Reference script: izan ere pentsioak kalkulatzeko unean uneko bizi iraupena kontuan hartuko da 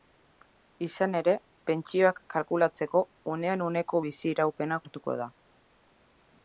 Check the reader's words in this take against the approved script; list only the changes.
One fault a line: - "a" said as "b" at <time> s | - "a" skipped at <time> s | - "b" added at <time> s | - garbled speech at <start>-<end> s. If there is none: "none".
- "kontuan" skipped at 4.8 s